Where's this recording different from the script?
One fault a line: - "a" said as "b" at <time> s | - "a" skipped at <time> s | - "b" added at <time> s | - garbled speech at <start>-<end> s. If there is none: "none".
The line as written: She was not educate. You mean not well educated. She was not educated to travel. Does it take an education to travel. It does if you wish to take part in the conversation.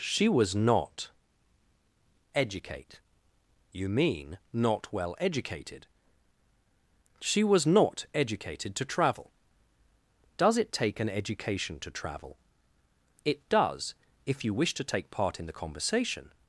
none